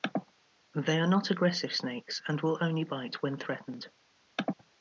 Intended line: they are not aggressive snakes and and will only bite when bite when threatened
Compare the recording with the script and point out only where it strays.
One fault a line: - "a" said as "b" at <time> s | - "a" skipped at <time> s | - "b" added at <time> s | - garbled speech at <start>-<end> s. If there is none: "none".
- "and" skipped at 2.4 s
- "bite when" skipped at 3.4 s